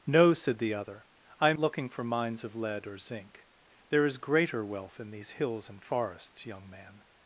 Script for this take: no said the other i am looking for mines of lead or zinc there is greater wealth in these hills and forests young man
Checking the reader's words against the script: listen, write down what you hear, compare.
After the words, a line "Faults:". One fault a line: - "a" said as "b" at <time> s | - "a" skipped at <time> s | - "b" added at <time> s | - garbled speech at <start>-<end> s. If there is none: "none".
no said the other i am looking for mines of lead or zinc there is greater wealth in these hills and forests young man
Faults:
none